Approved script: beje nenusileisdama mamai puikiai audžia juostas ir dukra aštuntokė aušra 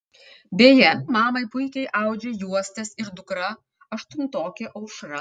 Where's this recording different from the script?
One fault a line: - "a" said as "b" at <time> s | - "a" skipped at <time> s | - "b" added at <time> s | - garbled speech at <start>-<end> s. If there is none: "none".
- "nenusileisdama" skipped at 0.9 s